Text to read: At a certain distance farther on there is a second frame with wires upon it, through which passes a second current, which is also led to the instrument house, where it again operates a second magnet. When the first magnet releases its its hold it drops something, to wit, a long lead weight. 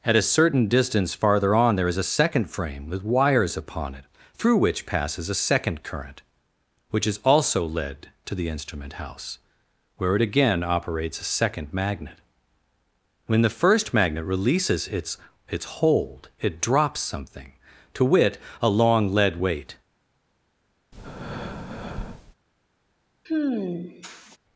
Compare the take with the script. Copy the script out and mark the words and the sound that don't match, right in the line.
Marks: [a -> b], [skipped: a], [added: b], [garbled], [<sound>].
At a certain distance farther on there is a second frame with wires upon it, through which passes a second current, which is also led to the instrument house, where it again operates a second magnet. When the first magnet releases its its hold it drops something, to wit, a long lead weight. [breath] [sigh]